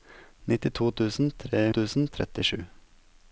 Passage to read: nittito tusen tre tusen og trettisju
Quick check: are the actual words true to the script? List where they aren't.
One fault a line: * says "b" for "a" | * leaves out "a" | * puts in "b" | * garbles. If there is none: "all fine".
all fine